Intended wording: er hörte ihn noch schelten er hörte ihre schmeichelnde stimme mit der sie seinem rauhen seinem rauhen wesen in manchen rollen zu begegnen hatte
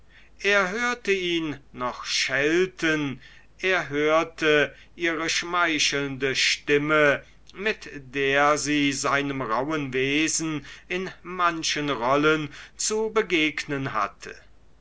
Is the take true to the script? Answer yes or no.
no